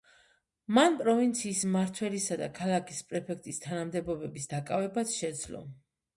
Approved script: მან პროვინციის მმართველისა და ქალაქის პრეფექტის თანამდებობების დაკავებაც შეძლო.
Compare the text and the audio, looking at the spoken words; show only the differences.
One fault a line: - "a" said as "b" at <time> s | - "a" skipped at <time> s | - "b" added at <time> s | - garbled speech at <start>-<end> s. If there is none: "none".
none